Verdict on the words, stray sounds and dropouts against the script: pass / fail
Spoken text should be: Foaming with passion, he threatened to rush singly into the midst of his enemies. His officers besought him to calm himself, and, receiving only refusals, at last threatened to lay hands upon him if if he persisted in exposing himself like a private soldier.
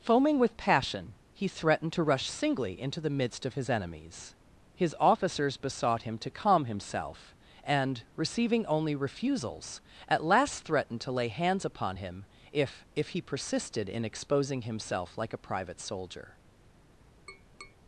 fail